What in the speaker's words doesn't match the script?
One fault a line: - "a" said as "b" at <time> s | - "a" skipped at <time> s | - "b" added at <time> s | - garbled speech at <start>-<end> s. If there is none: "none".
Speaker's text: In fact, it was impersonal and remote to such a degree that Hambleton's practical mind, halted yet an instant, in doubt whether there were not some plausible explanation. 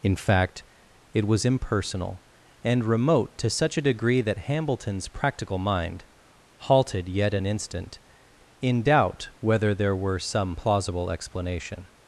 - "not" skipped at 10.2 s